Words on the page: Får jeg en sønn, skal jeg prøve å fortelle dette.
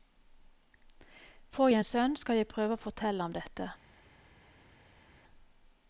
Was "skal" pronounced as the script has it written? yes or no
yes